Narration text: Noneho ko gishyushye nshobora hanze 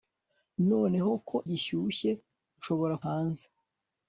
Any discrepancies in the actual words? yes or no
no